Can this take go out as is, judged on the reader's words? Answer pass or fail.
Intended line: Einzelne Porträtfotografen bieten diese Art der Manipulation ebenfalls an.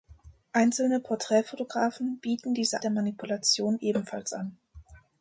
fail